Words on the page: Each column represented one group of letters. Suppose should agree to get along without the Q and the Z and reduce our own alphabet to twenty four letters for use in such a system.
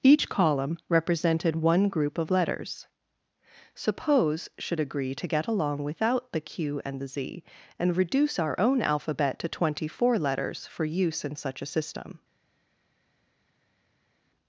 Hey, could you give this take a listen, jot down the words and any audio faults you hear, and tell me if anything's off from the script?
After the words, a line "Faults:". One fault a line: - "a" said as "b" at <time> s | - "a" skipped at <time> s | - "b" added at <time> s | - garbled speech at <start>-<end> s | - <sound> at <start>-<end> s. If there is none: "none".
Each column represented one group of letters. Suppose should agree to get along without the Q and the Z and reduce our own alphabet to twenty four letters for use in such a system.
Faults:
none